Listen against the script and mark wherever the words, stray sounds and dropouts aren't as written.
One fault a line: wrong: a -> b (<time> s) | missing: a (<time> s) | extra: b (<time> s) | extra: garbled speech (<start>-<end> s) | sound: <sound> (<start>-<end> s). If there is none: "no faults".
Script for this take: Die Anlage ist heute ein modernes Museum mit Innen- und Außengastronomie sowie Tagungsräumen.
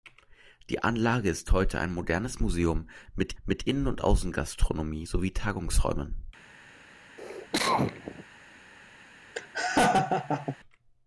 extra: mit (3.4 s)
sound: cough (7.2-8.2 s)
sound: laugh (9.4-10.6 s)